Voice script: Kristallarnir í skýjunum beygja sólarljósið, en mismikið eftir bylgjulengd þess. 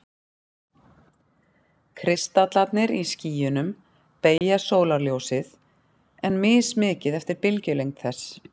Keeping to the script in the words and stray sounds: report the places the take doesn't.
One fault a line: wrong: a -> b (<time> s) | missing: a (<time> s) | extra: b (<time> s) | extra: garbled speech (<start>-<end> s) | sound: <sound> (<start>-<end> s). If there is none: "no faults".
sound: dropout (4.4-4.4 s)